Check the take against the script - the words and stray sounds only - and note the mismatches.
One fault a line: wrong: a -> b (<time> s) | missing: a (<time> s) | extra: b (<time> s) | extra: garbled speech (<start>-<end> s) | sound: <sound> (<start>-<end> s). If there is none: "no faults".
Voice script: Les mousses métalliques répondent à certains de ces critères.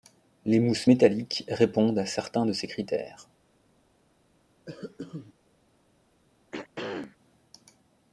sound: cough (4.7-5.3 s)
sound: throat clearing (6.5-7.2 s)